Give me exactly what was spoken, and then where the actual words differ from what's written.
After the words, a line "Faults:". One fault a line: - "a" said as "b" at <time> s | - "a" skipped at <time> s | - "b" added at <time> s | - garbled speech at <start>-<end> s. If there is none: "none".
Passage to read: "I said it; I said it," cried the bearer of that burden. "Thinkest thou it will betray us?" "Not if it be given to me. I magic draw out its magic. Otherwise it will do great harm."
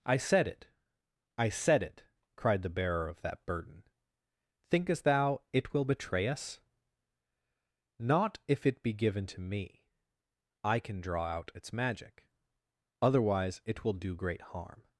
"I said it; I said it," cried the bearer of that burden. "Thinkest thou it will betray us?" "Not if it be given to me. I can draw out its magic. Otherwise it will do great harm."
Faults:
- "magic" said as "can" at 10.8 s